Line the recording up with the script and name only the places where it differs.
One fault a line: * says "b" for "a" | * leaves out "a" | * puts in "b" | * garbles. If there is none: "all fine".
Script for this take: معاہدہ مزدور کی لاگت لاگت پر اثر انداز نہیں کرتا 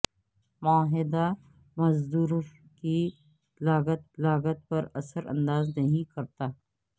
all fine